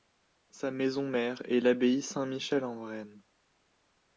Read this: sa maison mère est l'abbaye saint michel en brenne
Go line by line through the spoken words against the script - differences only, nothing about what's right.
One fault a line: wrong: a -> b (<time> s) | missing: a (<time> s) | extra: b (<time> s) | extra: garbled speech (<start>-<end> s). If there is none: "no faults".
no faults